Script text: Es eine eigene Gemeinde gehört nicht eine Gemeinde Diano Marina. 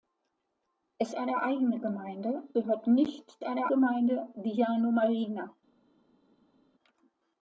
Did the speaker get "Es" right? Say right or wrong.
right